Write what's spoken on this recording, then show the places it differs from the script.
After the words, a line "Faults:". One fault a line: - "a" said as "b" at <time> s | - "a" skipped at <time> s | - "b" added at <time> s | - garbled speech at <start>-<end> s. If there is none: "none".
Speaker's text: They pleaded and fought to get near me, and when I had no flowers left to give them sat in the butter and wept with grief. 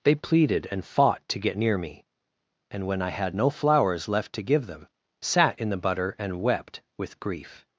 They pleaded and fought to get near me, and when I had no flowers left to give them sat in the butter and wept with grief.
Faults:
none